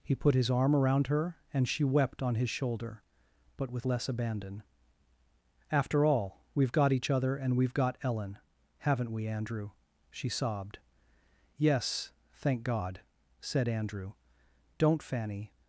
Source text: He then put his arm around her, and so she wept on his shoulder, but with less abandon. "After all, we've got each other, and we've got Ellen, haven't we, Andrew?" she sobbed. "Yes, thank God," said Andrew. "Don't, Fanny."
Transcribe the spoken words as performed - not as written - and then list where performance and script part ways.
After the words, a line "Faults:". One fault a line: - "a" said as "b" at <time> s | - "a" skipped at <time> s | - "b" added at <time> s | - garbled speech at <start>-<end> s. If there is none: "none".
He put his arm around her, and she wept on his shoulder, but with less abandon. "After all, we've got each other, and we've got Ellen, haven't we, Andrew?" she sobbed. "Yes, thank God," said Andrew. "Don't, Fanny."
Faults:
- "then" skipped at 0.1 s
- "so" skipped at 1.7 s